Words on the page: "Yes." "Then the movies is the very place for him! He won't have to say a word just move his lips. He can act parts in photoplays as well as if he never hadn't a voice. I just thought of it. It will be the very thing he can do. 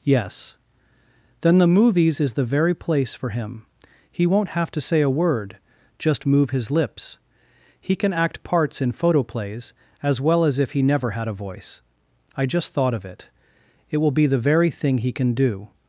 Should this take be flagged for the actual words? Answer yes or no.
yes